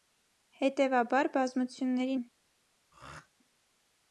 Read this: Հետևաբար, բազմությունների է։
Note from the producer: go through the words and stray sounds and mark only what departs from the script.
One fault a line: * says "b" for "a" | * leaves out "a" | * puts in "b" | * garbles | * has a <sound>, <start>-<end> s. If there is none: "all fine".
* has a throat clearing, 2.9-3.3 s